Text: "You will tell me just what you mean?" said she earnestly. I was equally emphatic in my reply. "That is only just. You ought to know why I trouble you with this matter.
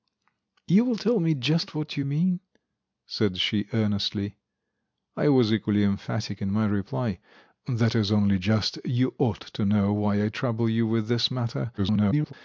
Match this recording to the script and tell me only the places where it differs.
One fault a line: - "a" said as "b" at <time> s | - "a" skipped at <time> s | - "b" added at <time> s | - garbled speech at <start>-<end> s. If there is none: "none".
- garbled speech at 11.8-12.3 s